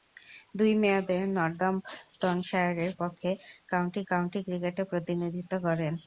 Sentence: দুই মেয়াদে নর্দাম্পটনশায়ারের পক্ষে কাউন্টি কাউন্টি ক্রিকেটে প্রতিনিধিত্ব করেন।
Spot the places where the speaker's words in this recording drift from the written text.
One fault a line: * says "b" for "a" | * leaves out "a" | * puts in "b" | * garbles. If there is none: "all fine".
all fine